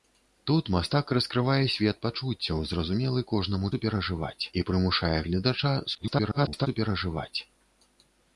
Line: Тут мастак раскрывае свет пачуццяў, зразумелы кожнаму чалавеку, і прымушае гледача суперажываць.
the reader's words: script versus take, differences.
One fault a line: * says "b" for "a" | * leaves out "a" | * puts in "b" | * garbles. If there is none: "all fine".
* says "суперажываць" for "чалавеку"
* garbles